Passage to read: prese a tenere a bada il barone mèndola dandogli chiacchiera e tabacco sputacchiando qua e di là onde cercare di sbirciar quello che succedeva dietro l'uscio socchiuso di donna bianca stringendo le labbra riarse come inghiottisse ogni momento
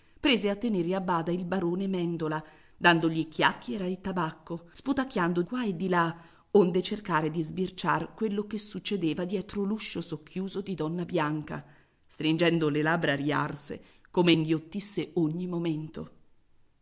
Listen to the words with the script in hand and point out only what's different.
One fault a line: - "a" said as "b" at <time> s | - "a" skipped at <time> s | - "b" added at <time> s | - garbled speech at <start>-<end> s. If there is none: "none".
none